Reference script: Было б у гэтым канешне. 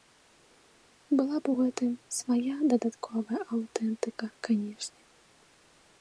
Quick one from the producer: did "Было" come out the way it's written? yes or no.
no